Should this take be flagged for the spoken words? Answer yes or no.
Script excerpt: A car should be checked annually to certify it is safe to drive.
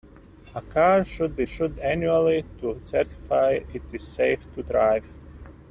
yes